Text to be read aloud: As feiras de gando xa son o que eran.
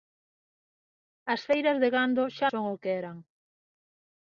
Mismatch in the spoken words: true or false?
false